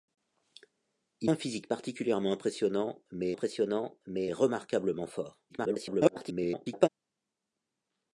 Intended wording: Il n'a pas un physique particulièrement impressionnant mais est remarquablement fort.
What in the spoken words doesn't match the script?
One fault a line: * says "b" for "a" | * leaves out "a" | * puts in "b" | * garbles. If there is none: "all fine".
* leaves out "n'a pas"
* puts in "impressionnant mais"
* garbles